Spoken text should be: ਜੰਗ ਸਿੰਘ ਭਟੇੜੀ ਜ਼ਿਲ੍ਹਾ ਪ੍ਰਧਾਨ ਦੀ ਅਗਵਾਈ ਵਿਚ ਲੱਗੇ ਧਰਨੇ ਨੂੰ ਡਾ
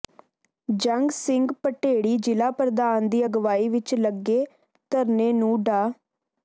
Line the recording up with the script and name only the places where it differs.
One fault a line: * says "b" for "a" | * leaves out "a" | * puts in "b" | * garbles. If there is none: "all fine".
all fine